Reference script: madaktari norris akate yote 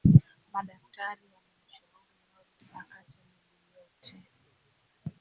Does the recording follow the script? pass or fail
fail